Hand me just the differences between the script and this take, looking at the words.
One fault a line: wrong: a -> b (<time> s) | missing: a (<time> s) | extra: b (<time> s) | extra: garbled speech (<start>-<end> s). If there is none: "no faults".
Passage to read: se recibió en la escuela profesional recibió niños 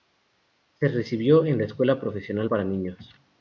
wrong: recibió -> para (2.5 s)